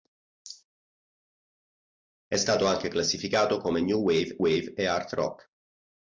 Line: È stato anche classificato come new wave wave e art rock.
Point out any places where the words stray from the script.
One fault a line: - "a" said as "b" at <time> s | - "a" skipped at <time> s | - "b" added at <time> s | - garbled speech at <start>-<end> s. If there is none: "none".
none